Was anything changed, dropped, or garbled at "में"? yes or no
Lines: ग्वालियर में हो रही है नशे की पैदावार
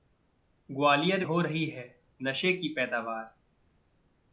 yes